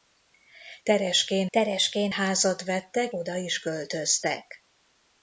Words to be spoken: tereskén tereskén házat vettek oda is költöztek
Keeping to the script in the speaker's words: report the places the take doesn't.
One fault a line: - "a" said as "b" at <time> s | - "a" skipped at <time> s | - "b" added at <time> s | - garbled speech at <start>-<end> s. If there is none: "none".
none